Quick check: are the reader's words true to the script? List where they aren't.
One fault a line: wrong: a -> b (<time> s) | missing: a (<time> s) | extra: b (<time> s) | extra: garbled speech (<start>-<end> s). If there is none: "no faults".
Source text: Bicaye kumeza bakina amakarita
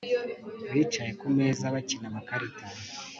no faults